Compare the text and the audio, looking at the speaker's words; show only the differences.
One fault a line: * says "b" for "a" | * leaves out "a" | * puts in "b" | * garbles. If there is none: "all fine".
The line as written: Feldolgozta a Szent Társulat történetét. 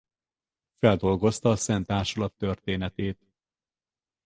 all fine